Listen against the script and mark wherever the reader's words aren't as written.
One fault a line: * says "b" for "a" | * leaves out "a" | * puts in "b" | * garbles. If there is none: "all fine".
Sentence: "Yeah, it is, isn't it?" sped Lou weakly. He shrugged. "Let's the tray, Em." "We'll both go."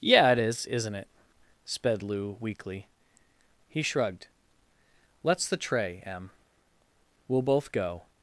all fine